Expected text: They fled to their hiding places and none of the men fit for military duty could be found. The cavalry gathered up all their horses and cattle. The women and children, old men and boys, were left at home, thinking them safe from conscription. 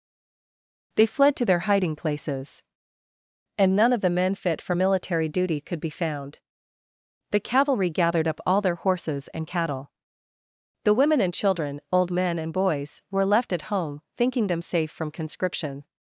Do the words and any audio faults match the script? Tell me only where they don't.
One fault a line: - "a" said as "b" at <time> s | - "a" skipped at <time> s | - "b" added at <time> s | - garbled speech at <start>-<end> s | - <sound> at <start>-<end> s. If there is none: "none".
none